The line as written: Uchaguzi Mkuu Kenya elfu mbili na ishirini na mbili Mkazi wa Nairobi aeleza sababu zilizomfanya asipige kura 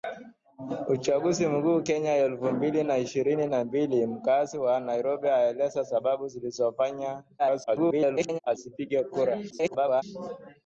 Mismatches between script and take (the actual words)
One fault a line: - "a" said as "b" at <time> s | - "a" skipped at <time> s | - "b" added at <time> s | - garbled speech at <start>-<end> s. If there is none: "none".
- garbled speech at 7.4-8.4 s
- garbled speech at 9.5-10.0 s